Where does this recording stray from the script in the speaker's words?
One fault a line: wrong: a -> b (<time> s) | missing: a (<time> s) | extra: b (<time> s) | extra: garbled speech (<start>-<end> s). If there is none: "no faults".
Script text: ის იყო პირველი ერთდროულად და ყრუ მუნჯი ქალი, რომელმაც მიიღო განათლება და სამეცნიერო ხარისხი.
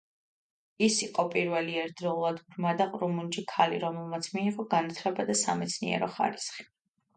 extra: ბრმა (2.5 s)